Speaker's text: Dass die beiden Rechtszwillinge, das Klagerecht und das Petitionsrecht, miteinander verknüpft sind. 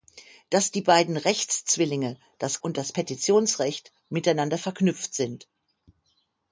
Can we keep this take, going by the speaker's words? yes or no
no